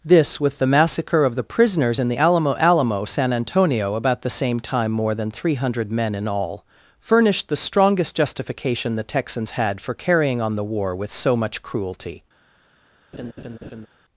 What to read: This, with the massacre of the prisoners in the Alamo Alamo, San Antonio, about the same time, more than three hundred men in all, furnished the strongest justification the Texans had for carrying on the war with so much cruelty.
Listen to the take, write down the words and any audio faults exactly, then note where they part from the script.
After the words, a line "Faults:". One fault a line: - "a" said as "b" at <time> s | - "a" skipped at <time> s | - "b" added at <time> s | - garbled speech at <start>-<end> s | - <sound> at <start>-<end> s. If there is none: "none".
This, with the massacre of the prisoners in the Alamo Alamo, San Antonio, about the same time, more than three hundred men in all, furnished the strongest justification the Texans had for carrying on the war with so much cruelty.
Faults:
- laugh at 13.1-13.9 s